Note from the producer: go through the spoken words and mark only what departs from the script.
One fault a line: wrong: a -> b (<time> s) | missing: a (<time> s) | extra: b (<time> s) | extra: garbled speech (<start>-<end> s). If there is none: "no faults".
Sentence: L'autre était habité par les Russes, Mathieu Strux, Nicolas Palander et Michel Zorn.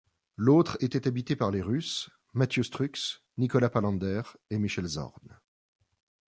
no faults